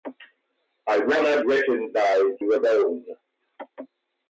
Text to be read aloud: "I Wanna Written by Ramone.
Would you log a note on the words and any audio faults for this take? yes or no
no